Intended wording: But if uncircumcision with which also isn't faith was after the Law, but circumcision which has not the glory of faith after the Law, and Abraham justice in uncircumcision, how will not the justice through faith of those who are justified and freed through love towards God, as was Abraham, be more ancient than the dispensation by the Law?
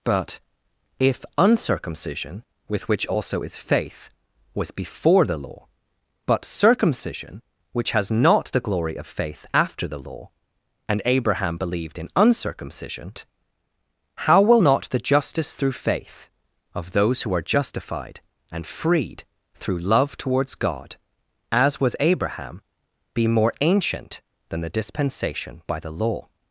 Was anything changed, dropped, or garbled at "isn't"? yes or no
yes